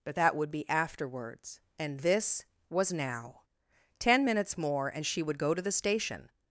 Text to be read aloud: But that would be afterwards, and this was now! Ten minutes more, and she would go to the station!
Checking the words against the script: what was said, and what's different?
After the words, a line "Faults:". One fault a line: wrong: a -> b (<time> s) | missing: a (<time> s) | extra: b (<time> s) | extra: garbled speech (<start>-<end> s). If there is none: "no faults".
But that would be afterwards, and this was now! Ten minutes more, and she would go to the station!
Faults:
no faults